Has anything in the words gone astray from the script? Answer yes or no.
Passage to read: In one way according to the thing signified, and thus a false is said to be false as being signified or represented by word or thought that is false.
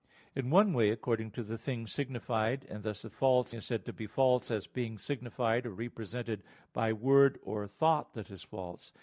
no